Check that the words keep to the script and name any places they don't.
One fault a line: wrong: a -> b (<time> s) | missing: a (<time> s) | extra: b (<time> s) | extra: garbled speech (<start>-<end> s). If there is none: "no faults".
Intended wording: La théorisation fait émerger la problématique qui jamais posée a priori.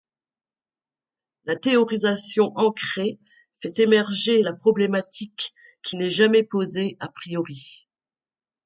extra: ancrée (2.5 s)
extra: n'est (5.9 s)